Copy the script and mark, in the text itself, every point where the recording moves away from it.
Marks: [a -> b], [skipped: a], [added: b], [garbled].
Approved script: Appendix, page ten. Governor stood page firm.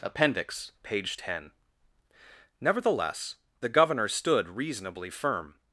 Appendix, page ten. [added: Nevertheless the] Governor stood [page -> reasonably] firm.